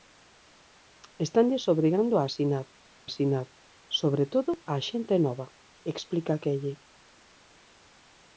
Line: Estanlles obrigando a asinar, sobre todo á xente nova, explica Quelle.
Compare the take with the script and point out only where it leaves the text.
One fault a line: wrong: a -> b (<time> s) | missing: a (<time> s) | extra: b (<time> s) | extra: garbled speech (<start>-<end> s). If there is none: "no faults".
extra: asinar (3.1 s)